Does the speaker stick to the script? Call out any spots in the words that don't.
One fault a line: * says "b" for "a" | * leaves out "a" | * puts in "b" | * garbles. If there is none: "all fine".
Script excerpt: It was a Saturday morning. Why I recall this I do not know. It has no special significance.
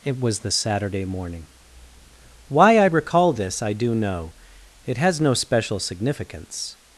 * says "the" for "a"
* leaves out "not"